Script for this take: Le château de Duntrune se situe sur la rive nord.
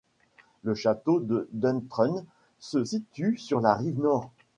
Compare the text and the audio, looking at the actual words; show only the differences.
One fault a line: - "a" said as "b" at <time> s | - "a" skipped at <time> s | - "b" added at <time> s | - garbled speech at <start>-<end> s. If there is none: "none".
none